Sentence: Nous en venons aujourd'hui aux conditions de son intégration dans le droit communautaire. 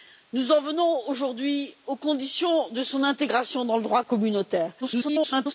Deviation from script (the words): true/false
true